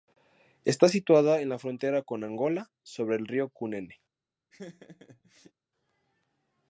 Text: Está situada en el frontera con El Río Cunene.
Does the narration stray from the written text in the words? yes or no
yes